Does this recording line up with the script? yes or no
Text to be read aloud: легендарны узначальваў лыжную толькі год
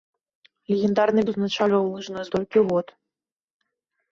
yes